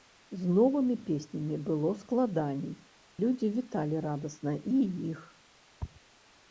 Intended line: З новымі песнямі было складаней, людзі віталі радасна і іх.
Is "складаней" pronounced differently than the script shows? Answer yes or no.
no